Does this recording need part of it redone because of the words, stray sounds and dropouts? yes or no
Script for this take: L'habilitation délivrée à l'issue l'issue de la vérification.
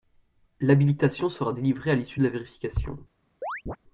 yes